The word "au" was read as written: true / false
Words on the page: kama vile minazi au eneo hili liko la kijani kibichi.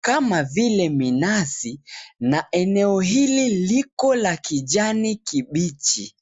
false